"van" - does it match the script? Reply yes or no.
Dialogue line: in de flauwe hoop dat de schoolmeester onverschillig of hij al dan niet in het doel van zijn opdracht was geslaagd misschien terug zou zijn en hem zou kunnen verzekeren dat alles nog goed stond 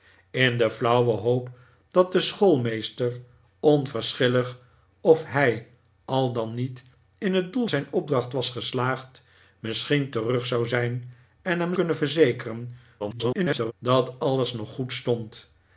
no